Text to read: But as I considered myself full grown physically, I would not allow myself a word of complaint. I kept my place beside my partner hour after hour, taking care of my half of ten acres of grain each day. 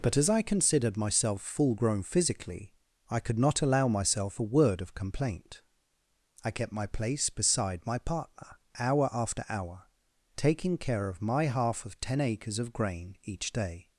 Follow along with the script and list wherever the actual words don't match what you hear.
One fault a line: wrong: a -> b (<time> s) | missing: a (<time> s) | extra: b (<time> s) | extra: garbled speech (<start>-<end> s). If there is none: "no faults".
wrong: would -> could (3.2 s)